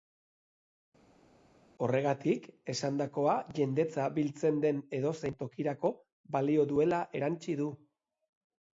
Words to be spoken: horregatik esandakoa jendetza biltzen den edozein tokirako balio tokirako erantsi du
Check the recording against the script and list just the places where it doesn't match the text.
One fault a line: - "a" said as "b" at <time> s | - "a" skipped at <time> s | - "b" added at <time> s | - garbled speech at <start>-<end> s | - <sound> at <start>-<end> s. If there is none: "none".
- "tokirako" said as "duela" at 6.8 s